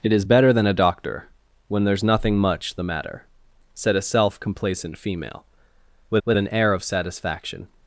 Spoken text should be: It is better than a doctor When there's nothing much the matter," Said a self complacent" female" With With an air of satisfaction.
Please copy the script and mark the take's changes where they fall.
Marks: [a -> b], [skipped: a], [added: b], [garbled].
It is better than a doctor When there's nothing much the matter," Said a self complacent" female" With With an air of satisfaction.